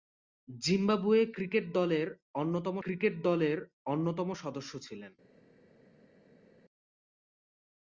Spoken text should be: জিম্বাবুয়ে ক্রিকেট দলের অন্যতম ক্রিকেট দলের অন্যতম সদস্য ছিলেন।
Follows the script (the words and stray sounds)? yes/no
yes